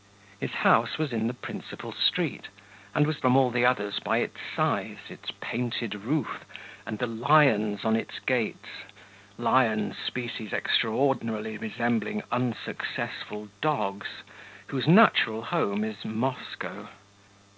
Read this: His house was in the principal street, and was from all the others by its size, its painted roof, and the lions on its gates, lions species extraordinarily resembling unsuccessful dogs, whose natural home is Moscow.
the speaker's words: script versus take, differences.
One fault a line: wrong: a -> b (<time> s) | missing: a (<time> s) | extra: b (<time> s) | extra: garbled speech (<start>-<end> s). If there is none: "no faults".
no faults